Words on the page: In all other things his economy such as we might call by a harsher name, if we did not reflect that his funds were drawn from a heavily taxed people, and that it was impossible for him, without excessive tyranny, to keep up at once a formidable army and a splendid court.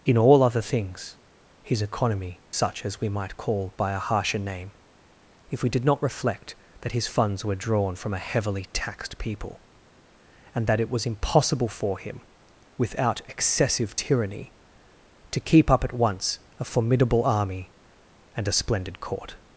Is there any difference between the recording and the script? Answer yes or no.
no